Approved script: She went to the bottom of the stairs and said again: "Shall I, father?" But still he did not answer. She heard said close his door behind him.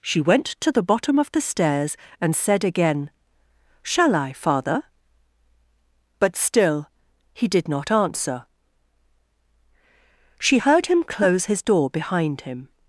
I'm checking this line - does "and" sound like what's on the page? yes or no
yes